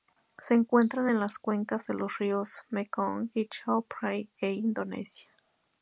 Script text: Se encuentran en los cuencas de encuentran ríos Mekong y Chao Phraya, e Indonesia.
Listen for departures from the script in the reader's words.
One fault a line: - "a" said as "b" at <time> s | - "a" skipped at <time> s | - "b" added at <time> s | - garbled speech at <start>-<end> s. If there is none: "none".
- "los" said as "las" at 1.2 s
- "encuentran" said as "los" at 1.9 s